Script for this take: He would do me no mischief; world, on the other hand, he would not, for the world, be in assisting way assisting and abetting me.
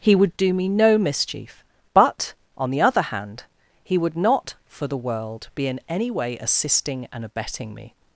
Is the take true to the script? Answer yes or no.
no